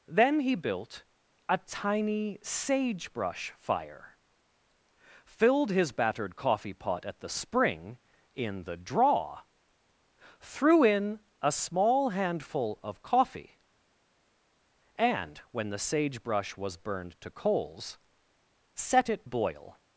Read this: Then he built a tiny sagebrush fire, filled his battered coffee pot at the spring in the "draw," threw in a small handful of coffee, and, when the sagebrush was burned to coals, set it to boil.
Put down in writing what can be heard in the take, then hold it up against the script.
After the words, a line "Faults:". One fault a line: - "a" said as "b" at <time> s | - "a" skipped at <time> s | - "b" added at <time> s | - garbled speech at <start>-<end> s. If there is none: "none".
Then he built a tiny sagebrush fire, filled his battered coffee pot at the spring in the "draw," threw in a small handful of coffee, and, when the sagebrush was burned to coals, set it boil.
Faults:
- "to" skipped at 19.3 s